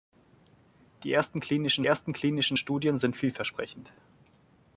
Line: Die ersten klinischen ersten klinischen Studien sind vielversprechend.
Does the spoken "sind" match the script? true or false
true